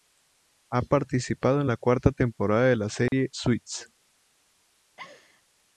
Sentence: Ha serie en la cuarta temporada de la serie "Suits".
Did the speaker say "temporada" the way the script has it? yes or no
yes